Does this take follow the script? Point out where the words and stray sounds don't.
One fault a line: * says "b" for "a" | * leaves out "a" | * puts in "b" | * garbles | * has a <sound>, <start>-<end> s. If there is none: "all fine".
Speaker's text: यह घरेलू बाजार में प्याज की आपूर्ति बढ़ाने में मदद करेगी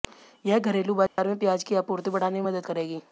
* has a dropout, 1.1-1.2 s